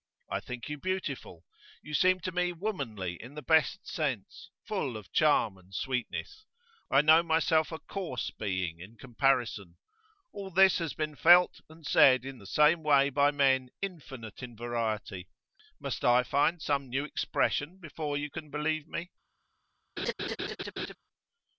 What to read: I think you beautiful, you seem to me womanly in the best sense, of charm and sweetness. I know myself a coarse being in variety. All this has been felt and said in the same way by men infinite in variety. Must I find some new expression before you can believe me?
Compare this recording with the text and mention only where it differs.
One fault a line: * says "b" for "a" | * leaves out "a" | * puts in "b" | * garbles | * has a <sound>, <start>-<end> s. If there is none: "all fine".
* puts in "full"
* says "comparison" for "variety"
* has a laugh, 20.0-21.0 s